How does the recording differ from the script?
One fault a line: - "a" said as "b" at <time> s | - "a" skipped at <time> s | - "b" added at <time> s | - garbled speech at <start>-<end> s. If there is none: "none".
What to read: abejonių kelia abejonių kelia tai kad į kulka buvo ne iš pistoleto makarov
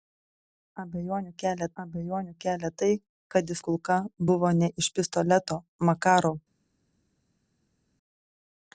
none